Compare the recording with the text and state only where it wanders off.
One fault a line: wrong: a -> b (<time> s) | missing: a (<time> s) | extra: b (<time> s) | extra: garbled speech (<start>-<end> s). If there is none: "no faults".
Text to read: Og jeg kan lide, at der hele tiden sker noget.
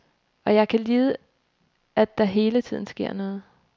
no faults